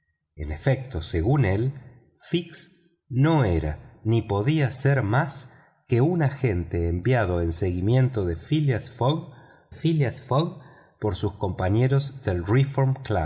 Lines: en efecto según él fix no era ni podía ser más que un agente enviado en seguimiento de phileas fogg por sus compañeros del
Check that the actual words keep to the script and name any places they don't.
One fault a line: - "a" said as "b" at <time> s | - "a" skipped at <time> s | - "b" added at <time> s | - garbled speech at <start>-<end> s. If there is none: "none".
- "phileas fogg" added at 9.7 s